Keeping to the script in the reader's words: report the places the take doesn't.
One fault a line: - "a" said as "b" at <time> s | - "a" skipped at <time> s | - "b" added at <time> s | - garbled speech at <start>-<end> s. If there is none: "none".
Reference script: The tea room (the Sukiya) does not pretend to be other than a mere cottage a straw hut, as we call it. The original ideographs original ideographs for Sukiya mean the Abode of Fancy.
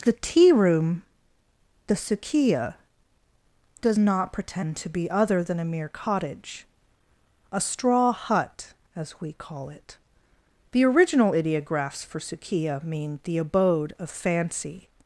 - "original ideographs" skipped at 12.0 s